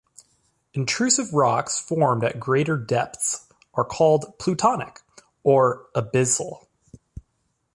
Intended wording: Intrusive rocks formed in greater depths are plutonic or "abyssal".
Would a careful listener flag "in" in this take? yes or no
yes